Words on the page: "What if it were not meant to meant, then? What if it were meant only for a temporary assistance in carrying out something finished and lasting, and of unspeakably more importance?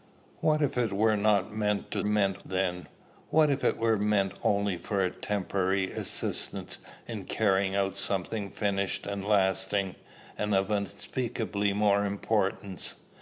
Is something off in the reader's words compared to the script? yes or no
no